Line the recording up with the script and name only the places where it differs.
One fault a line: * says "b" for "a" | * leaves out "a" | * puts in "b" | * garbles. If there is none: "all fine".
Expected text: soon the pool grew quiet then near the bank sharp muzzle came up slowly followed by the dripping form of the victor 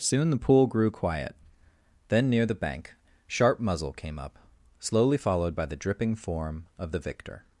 all fine